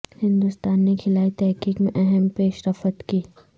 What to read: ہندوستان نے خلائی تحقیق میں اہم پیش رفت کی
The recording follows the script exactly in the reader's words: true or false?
true